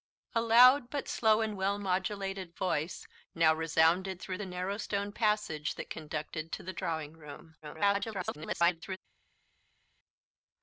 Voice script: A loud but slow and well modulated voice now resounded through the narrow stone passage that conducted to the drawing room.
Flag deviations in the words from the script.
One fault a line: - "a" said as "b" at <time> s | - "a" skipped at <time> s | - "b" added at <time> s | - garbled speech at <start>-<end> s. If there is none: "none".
- garbled speech at 7.6-9.0 s